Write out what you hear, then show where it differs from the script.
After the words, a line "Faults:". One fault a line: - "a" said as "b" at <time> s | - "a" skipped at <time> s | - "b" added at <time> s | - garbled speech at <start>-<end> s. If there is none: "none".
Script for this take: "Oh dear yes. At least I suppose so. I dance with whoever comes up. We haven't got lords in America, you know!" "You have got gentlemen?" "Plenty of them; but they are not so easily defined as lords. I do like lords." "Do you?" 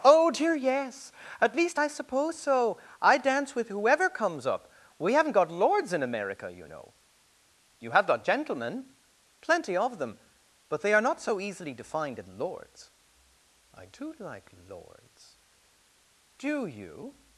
"Oh dear yes. At least I suppose so. I dance with whoever comes up. We haven't got lords in America, you know!" "You have got gentlemen?" "Plenty of them; but they are not so easily defined in lords. I do like lords." "Do you?"
Faults:
- "as" said as "in" at 12.2 s